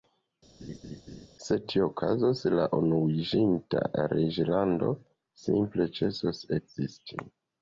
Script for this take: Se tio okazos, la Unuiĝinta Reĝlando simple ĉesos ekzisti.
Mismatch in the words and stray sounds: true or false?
true